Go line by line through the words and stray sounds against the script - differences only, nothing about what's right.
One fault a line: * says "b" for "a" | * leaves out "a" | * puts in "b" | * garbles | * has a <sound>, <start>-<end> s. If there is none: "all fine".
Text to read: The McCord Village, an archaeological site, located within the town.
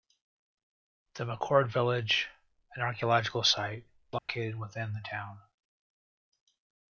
* has a dropout, 4.2-4.3 s